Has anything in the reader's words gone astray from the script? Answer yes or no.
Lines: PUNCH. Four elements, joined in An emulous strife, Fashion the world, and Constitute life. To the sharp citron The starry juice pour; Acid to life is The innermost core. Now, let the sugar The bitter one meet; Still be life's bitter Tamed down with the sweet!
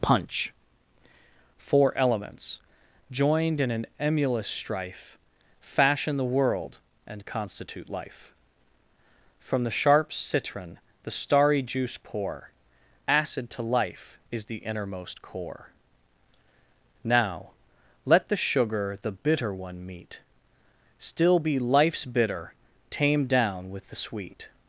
yes